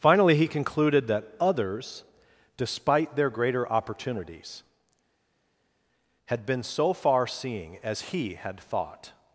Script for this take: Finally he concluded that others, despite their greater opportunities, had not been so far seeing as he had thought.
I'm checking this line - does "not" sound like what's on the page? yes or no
no